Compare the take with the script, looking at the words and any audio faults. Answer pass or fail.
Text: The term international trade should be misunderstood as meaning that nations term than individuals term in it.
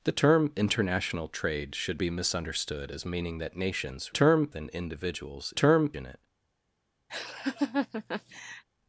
fail